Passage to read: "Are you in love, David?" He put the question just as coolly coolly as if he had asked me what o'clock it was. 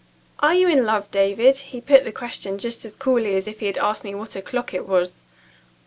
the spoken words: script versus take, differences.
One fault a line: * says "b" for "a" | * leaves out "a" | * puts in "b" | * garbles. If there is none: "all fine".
* leaves out "coolly"